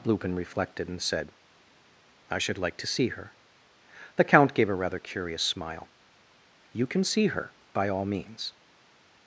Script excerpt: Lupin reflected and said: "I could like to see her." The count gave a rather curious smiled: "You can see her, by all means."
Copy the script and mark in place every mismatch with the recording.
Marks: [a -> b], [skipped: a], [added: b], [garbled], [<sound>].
Lupin reflected and said: "I [could -> should] like to see her." The count gave a rather curious [smiled: -> smile] "You can see her, by all means."